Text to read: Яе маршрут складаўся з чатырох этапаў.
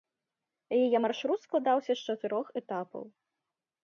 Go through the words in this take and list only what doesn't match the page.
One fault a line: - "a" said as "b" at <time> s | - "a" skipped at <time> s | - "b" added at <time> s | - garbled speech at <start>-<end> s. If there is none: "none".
none